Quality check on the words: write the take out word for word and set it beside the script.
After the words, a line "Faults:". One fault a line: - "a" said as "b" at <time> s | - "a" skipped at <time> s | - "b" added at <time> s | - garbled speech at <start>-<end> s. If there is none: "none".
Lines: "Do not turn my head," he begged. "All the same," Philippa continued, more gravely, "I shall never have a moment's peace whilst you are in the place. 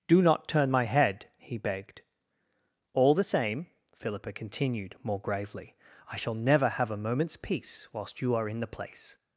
"Do not turn my head," he begged. "All the same," Philippa continued, more gravely, "I shall never have a moment's peace whilst you are in the place.
Faults:
none